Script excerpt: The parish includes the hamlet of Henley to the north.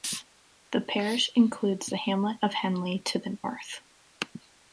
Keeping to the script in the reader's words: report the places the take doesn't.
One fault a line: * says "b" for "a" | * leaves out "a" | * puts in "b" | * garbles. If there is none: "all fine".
all fine